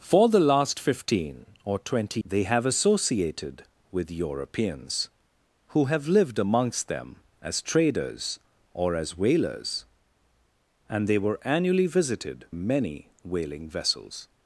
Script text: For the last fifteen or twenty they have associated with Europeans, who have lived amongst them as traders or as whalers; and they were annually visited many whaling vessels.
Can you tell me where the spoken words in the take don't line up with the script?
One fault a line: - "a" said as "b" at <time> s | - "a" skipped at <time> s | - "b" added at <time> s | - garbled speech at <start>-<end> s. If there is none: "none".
none